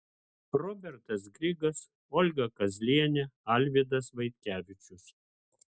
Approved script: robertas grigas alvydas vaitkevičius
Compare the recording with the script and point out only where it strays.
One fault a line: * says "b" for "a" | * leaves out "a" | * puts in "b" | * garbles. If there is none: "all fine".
* puts in "olga kazlienė"